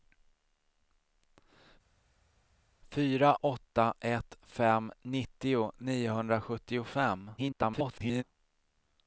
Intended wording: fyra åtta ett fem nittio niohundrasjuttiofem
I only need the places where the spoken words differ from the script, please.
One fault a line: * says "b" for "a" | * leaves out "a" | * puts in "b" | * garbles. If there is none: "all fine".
* garbles